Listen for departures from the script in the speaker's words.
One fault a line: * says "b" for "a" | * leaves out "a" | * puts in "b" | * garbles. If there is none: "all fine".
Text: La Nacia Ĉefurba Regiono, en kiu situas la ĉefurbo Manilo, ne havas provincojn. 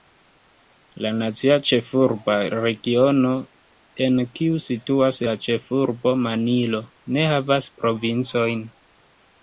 all fine